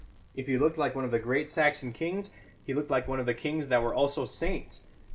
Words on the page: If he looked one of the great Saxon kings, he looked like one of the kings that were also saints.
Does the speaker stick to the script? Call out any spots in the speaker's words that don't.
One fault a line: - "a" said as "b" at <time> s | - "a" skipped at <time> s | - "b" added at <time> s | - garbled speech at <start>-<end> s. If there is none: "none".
- "like" added at 0.8 s